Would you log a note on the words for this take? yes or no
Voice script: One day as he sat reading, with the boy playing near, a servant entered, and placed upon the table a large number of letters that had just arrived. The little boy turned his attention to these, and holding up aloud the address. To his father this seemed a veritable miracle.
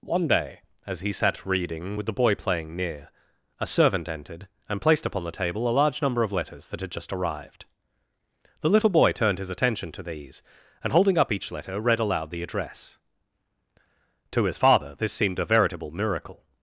yes